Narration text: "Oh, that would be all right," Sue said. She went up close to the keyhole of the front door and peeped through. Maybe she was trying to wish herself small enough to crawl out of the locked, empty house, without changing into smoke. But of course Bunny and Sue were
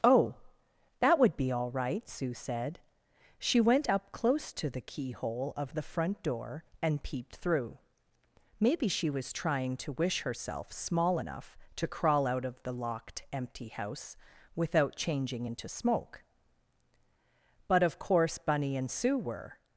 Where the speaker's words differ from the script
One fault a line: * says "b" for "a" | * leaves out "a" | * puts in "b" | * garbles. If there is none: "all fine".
all fine